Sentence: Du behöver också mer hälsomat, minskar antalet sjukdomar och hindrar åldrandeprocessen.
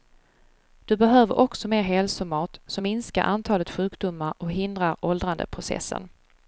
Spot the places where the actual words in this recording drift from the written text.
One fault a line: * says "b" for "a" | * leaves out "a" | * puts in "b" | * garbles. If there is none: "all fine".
* puts in "som"